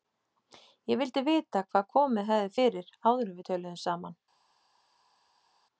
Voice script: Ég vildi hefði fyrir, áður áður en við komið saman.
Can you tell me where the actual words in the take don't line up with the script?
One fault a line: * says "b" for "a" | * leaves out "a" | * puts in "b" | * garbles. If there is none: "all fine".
* puts in "vita hvað komið"
* leaves out "áður"
* says "töluðum" for "komið"